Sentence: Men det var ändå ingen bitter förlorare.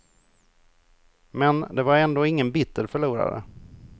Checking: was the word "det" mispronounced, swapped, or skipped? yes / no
no